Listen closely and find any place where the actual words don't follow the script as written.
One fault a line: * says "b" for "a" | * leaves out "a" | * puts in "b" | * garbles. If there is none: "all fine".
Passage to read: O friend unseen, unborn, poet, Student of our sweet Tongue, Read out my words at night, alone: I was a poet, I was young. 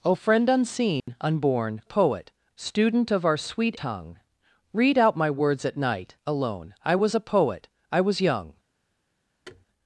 all fine